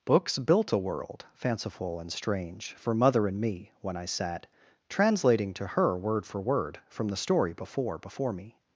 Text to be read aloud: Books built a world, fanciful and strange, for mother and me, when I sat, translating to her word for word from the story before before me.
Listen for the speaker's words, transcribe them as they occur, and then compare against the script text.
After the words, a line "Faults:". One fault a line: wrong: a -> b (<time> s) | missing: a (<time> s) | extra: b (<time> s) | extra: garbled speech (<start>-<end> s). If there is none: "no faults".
Books built a world, fanciful and strange, for mother and me, when I sat, translating to her word for word from the story before before me.
Faults:
no faults